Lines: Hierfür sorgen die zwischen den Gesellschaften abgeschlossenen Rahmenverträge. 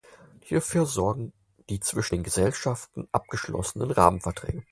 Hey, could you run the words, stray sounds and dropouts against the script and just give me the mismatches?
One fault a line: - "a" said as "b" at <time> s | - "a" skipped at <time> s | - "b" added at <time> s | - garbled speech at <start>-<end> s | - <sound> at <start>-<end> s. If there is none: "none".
none